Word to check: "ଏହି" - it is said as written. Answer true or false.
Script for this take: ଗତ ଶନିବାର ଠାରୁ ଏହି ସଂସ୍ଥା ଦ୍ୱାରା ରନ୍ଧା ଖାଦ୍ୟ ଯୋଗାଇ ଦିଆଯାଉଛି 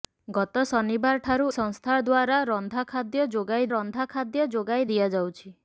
false